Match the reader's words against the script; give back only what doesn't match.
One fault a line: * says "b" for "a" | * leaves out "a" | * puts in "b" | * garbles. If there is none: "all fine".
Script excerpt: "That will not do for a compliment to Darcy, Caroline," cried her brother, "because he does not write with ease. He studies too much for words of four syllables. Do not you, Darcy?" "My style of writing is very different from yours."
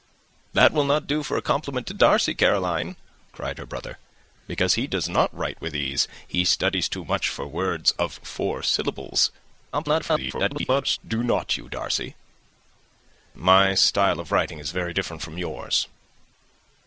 * garbles